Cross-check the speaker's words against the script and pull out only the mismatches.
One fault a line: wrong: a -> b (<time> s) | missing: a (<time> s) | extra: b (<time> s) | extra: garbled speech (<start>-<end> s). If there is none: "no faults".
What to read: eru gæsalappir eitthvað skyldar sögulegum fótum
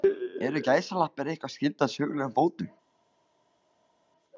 no faults